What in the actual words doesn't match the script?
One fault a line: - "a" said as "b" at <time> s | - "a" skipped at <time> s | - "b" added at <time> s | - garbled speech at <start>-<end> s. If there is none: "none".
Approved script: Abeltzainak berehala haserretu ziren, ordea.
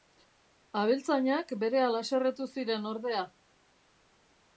none